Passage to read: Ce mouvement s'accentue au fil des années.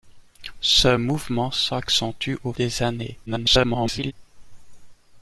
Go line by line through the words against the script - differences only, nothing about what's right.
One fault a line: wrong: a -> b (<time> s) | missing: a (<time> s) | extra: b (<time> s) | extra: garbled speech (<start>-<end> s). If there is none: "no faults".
missing: fil (2.5 s)
extra: garbled speech (3.3-4.1 s)